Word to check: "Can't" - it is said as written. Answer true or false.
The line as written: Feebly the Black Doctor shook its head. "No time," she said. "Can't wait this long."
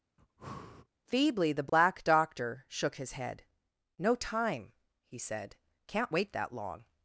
true